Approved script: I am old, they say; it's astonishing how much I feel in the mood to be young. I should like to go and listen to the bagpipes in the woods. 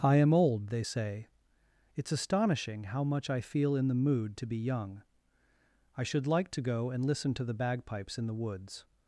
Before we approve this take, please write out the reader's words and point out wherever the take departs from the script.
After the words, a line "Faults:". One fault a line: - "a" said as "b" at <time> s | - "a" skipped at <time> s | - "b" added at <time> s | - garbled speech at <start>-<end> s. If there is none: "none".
I am old, they say; it's astonishing how much I feel in the mood to be young. I should like to go and listen to the bagpipes in the woods.
Faults:
none